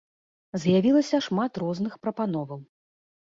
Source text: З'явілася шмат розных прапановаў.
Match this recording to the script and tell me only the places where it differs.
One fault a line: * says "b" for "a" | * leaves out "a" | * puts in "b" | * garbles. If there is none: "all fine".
all fine